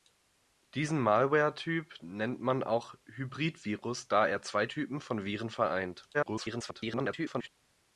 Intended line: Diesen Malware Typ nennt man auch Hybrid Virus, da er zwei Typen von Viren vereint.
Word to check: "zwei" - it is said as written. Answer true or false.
true